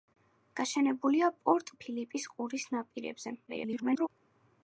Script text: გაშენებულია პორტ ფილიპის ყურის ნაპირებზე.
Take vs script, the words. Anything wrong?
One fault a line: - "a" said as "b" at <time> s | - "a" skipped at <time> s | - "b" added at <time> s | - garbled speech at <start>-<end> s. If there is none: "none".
- garbled speech at 3.5-4.1 s